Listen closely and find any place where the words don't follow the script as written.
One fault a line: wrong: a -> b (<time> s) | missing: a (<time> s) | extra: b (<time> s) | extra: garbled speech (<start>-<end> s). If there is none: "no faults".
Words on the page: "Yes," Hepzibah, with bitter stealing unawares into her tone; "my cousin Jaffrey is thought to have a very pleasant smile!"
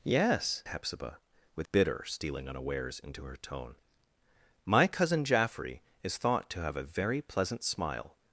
no faults